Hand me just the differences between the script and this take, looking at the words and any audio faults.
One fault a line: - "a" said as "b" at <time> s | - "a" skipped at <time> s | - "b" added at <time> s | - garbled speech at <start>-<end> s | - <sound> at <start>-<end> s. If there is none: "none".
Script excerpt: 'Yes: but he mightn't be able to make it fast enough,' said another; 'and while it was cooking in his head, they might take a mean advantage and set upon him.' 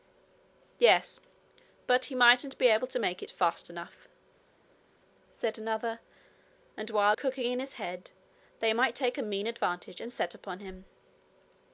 - "it was" skipped at 7.2 s